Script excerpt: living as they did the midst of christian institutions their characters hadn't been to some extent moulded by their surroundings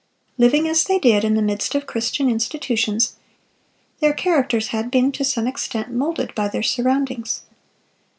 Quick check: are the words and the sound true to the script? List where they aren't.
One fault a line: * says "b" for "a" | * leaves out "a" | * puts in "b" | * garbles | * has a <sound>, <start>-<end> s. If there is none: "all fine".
* puts in "in"
* says "had" for "hadn't"